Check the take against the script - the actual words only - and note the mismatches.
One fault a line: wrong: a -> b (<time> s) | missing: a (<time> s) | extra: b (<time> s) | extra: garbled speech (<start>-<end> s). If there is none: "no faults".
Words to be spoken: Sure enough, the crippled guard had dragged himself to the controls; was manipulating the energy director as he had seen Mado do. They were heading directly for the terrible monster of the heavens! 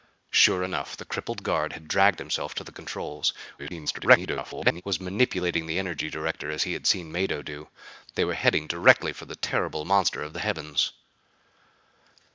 extra: garbled speech (3.6-4.8 s)